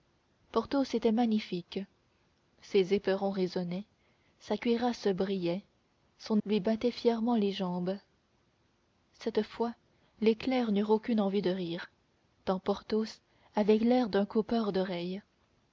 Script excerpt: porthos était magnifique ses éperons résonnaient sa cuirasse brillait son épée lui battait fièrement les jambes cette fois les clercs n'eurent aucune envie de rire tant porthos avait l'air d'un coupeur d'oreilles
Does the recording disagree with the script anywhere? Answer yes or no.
yes